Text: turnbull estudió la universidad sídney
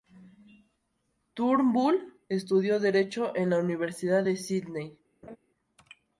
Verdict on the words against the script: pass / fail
fail